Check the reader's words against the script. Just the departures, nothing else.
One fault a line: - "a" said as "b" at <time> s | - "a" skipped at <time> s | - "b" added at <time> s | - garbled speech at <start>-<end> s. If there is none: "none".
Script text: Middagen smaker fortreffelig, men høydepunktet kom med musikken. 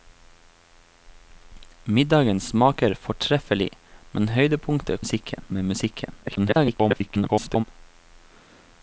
- "kom" said as "musikken" at 5.0 s
- garbled speech at 6.2-7.6 s